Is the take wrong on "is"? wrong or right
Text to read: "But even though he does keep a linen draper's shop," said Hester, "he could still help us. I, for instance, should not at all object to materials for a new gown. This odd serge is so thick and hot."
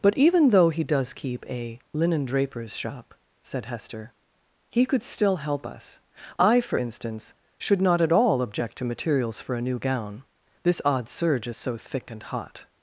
right